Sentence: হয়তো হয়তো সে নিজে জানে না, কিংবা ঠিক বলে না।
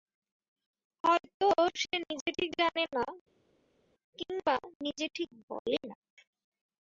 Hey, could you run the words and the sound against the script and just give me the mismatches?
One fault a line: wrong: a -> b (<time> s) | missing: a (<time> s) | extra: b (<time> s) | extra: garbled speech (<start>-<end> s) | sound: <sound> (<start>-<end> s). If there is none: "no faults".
missing: হয়তো (1.5 s)
extra: ঠিক (2.4 s)
extra: নিজে (4.8 s)